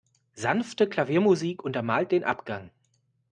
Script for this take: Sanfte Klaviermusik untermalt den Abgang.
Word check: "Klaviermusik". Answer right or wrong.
right